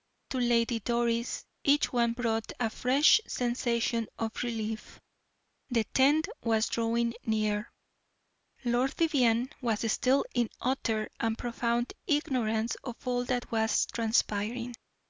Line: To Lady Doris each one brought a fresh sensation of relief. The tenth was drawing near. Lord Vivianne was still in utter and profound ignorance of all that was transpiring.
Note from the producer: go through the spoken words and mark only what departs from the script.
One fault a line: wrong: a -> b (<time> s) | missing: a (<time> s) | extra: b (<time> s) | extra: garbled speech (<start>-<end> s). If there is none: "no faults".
no faults